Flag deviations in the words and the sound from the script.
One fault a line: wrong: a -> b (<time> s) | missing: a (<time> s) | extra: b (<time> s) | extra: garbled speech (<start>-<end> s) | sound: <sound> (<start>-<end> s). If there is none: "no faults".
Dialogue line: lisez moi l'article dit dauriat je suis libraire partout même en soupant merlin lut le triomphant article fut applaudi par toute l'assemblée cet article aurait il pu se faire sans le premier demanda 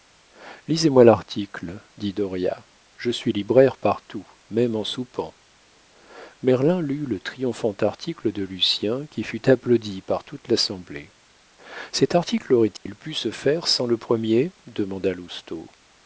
extra: de lucien qui (8.3 s)
sound: dropout (12.8-12.9 s)